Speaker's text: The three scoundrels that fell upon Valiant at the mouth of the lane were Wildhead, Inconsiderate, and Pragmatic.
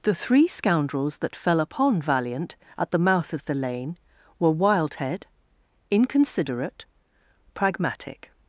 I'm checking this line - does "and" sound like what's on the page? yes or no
no